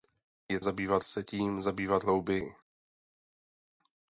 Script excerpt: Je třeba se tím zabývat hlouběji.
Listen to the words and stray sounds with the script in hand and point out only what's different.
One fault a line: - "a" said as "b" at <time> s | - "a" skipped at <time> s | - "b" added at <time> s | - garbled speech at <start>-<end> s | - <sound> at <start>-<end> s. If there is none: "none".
- "třeba" said as "zabývat" at 0.6 s